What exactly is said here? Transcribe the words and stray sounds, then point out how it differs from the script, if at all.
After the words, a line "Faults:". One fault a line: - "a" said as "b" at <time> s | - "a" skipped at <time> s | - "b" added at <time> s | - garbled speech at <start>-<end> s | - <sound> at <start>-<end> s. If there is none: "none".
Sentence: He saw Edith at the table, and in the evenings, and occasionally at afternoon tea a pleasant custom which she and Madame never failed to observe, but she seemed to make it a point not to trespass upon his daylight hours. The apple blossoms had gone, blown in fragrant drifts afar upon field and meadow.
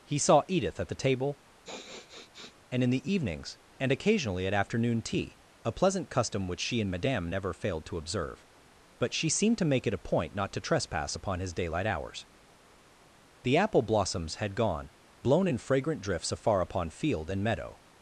He saw Edith at the table, and in the evenings, and occasionally at afternoon tea a pleasant custom which she and Madame never failed to observe, but she seemed to make it a point not to trespass upon his daylight hours. The apple blossoms had gone, blown in fragrant drifts afar upon field and meadow.
Faults:
- sniff at 1.6-2.6 s